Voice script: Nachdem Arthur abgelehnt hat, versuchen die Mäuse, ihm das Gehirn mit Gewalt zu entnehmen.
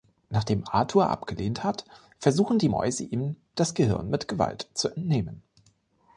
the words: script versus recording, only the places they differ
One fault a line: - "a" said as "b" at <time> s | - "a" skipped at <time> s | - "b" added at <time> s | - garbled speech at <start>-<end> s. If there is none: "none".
none